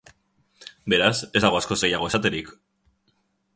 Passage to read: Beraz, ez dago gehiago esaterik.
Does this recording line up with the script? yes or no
no